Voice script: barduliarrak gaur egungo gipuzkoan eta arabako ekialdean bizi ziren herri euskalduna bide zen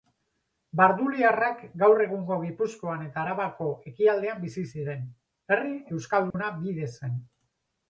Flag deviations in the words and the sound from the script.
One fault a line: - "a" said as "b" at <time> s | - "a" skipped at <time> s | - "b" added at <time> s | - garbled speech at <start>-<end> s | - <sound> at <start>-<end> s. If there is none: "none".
- dropout at 6.3-6.3 s